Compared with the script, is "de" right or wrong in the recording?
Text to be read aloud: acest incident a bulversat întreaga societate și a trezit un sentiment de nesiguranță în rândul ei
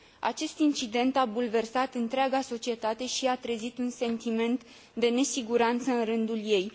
right